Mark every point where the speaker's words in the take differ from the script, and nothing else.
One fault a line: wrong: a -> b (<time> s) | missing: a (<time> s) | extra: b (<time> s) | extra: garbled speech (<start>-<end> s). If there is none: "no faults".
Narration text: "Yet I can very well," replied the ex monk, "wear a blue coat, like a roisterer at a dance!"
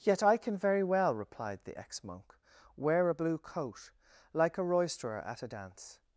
no faults